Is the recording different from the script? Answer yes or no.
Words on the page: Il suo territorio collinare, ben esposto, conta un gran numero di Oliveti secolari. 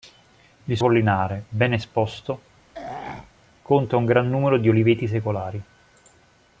yes